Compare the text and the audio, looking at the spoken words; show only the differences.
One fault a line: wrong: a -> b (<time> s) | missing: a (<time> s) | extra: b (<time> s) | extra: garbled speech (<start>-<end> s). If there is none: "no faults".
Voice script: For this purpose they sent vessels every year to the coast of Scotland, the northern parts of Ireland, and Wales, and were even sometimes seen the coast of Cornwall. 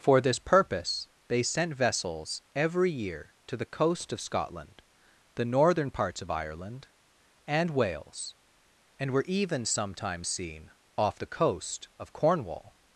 extra: off (11.0 s)